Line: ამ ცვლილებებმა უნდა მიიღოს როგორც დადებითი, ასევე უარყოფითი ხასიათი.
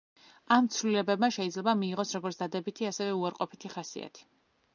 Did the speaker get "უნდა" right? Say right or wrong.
wrong